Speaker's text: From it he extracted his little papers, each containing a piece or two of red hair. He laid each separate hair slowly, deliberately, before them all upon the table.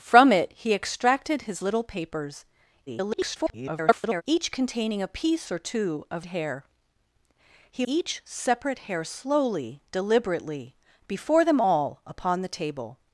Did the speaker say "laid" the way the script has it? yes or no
no